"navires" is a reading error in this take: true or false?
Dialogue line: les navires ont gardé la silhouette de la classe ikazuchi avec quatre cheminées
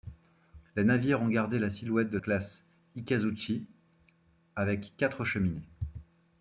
false